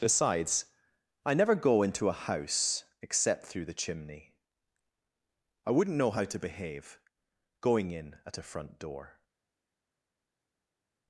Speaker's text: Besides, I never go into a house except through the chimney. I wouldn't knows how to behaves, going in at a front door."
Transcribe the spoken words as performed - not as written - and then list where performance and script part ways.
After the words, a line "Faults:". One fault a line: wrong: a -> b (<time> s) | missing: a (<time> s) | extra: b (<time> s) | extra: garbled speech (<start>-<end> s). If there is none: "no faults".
Besides, I never go into a house except through the chimney. I wouldn't know how to behave, going in at a front door."
Faults:
wrong: knows -> know (6.0 s)
wrong: behaves -> behave (6.4 s)